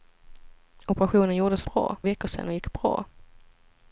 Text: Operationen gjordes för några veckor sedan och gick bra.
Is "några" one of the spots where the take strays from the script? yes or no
yes